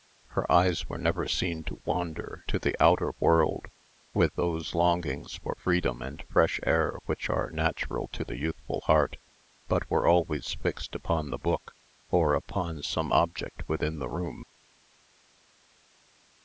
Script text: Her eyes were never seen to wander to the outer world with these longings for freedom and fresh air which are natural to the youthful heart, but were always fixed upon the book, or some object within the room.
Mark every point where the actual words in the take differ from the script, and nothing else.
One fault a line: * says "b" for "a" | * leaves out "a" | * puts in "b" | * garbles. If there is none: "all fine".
* says "those" for "these"
* puts in "upon"